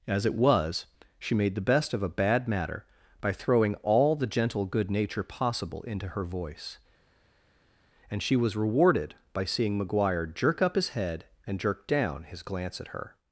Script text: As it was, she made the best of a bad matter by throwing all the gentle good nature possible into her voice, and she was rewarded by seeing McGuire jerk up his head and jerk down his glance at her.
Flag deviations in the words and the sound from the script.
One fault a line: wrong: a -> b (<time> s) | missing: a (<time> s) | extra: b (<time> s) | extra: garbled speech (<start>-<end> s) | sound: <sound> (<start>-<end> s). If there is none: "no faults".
no faults